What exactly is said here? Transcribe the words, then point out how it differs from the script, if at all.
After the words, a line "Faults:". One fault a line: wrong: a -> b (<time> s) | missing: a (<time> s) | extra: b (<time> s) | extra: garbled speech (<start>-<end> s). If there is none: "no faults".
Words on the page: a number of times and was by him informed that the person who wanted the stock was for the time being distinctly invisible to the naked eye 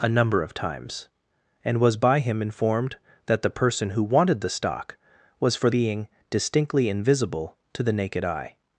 a number of times and was by him informed that the person who wanted the stock was for being distinctly invisible to the naked eye
Faults:
missing: the time (5.7 s)